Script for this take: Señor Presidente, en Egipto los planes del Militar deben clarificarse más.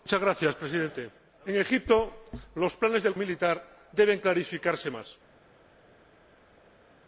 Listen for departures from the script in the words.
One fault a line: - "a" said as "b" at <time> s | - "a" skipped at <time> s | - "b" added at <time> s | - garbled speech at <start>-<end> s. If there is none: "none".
none